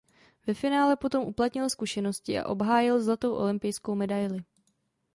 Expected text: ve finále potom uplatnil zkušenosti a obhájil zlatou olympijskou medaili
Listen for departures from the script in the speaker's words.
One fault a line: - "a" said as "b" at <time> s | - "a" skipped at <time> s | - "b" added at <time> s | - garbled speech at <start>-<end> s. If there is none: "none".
none